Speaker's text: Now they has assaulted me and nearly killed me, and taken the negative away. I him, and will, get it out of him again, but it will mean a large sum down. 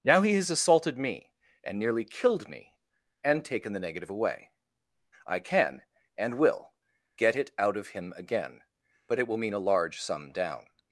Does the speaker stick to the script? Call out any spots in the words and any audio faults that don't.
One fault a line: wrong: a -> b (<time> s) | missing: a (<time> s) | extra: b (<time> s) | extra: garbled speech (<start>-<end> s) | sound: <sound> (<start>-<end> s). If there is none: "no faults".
wrong: they -> he (0.2 s)
wrong: him -> can (5.4 s)